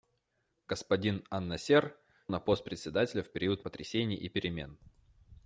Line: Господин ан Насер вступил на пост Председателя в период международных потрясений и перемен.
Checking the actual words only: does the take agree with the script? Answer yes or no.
no